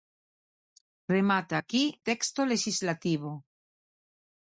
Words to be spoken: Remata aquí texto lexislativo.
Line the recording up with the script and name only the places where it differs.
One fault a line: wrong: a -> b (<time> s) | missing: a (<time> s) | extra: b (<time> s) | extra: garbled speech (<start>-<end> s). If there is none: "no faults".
no faults